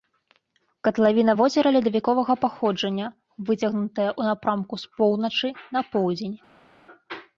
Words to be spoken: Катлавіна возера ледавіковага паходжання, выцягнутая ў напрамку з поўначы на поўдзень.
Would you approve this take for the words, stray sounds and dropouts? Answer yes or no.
yes